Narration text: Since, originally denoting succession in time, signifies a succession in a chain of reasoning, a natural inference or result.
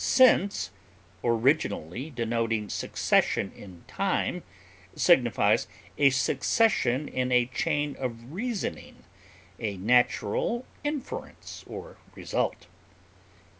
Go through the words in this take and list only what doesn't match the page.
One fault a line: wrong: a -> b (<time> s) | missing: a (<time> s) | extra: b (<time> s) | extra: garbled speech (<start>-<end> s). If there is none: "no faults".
no faults